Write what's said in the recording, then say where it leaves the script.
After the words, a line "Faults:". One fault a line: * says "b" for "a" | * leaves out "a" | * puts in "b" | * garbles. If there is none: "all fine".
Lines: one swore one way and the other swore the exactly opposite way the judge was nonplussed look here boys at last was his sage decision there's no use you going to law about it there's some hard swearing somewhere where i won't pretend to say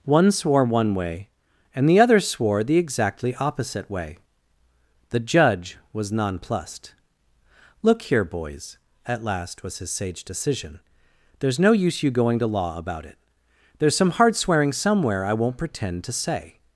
one swore one way and the other swore the exactly opposite way the judge was nonplussed look here boys at last was his sage decision there's no use you going to law about it there's some hard swearing somewhere i won't pretend to say
Faults:
* leaves out "where"